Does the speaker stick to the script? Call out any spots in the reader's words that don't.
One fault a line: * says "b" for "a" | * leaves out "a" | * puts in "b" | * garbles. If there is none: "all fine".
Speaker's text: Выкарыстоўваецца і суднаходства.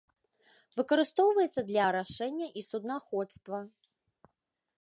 * puts in "для арашэння"